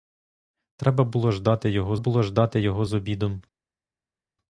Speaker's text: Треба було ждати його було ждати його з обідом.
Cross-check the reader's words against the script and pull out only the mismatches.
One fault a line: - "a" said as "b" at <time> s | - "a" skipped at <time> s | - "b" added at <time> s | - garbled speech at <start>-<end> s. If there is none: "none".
none